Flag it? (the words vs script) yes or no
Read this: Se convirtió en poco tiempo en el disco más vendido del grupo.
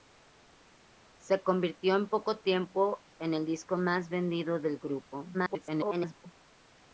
yes